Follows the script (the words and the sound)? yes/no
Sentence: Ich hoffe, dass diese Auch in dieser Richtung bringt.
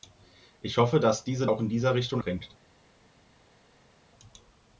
yes